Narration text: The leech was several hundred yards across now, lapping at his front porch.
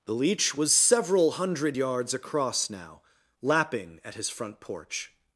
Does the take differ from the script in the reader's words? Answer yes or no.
no